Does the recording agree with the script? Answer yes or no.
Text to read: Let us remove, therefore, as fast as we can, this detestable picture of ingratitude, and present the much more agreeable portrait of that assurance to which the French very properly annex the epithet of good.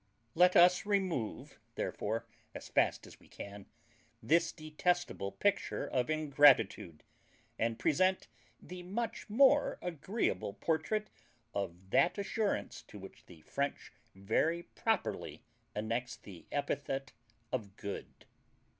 yes